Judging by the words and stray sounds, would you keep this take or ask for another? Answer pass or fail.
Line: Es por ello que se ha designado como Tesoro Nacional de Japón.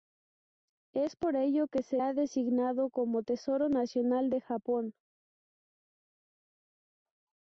pass